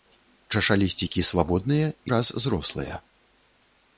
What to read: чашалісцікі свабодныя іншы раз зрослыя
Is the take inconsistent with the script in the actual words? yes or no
yes